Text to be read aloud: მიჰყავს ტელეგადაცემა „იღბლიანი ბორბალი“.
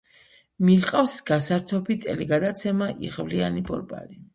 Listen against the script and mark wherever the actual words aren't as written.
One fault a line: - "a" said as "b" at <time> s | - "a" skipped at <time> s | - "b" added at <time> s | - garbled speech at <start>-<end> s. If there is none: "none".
- "გასართობი" added at 1.3 s